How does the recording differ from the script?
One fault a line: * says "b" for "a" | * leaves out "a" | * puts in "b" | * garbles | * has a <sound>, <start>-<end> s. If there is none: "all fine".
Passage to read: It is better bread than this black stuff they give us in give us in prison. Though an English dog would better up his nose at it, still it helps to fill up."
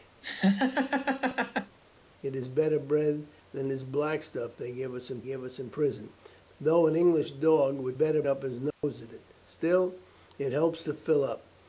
* has a laugh, 0.2-1.8 s
* has a dropout, 8.7-8.8 s